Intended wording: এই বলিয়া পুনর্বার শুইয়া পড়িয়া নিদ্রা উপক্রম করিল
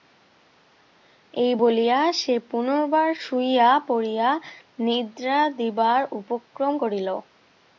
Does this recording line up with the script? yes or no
no